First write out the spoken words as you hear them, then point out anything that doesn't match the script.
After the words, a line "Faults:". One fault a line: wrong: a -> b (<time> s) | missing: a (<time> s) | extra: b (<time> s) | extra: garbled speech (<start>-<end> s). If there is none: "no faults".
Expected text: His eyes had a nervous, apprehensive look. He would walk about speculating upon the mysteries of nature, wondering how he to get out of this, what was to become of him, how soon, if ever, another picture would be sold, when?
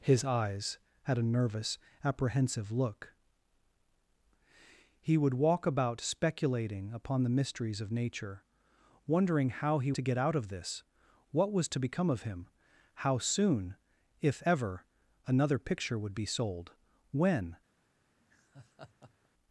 His eyes had a nervous, apprehensive look. He would walk about speculating upon the mysteries of nature, wondering how he to get out of this, what was to become of him, how soon, if ever, another picture would be sold, when?
Faults:
no faults